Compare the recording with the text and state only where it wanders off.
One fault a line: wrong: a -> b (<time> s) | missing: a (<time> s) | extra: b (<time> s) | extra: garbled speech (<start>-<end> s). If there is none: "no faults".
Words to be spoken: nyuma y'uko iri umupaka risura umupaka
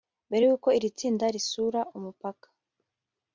wrong: nyuma -> mbere (0.3 s)
wrong: umupaka -> tsinda (1.0 s)